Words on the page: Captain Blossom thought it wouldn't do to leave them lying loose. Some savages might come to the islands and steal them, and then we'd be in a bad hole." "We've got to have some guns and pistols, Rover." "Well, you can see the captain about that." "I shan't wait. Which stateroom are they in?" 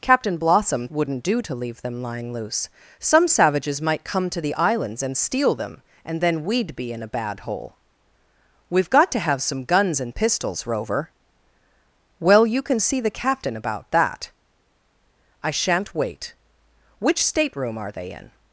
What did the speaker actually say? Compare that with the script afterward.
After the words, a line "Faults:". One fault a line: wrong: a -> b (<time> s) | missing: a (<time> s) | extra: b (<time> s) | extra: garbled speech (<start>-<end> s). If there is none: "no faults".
Captain Blossom wouldn't do to leave them lying loose. Some savages might come to the islands and steal them, and then we'd be in a bad hole." "We've got to have some guns and pistols, Rover." "Well, you can see the captain about that." "I shan't wait. Which stateroom are they in?"
Faults:
missing: thought it (0.9 s)